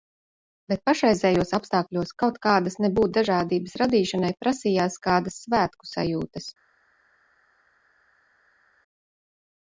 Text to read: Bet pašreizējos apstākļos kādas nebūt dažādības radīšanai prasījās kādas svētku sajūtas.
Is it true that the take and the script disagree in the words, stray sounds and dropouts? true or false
true